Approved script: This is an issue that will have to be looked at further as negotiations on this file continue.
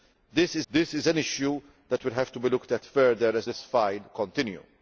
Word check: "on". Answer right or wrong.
wrong